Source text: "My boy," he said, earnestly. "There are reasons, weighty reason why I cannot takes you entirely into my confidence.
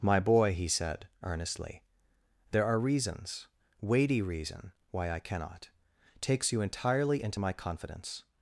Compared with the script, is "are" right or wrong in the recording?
right